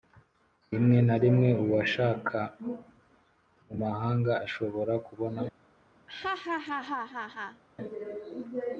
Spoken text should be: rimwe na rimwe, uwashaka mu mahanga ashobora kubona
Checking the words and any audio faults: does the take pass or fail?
fail